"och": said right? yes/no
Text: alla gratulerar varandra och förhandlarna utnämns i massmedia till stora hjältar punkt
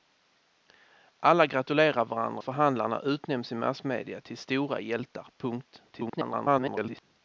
no